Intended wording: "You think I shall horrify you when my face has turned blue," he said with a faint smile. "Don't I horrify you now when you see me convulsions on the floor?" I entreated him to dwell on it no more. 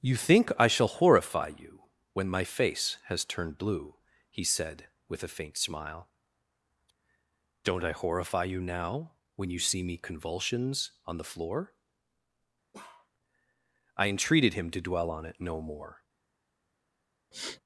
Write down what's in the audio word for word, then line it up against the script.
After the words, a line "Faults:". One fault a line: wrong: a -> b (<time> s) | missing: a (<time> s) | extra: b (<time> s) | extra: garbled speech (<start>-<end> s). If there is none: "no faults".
"You think I shall horrify you when my face has turned blue," he said with a faint smile. "Don't I horrify you now when you see me convulsions on the floor?" I entreated him to dwell on it no more.
Faults:
no faults